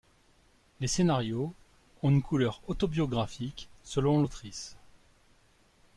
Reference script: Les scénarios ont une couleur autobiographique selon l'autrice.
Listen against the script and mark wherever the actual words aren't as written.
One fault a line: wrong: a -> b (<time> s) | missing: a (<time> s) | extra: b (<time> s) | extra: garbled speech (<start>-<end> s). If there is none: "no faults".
no faults